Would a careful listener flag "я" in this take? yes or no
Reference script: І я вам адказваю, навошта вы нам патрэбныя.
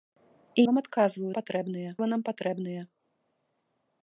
yes